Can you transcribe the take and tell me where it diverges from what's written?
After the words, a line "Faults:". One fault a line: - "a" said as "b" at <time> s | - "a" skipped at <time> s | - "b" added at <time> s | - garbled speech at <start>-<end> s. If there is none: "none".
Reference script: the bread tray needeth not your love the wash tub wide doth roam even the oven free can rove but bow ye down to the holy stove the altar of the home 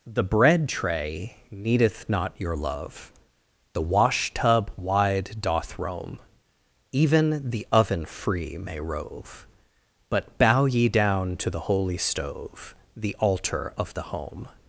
the bread tray needeth not your love the wash tub wide doth roam even the oven free may rove but bow ye down to the holy stove the altar of the home
Faults:
- "can" said as "may" at 8.6 s